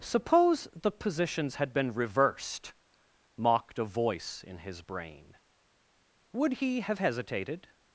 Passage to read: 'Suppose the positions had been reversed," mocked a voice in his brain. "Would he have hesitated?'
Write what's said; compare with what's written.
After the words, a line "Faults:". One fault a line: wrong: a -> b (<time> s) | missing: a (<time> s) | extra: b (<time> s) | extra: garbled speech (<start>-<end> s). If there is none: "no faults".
'Suppose the positions had been reversed," mocked a voice in his brain. "Would he have hesitated?'
Faults:
no faults